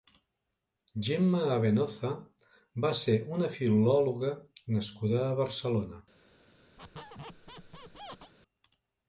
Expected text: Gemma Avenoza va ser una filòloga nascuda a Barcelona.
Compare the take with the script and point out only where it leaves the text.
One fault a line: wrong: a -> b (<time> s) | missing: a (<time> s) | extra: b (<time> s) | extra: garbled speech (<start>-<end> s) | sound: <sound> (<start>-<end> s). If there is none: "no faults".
sound: squeak (6.8-8.3 s)